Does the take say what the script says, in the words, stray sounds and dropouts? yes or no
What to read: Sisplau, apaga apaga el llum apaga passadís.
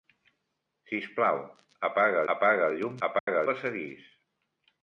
no